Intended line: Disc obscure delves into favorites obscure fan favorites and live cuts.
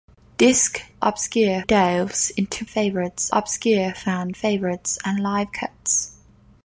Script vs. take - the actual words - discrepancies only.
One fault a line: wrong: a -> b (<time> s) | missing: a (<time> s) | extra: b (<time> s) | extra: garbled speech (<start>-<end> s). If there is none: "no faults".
no faults